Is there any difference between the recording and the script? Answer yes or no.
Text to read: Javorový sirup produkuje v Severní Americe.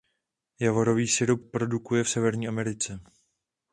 no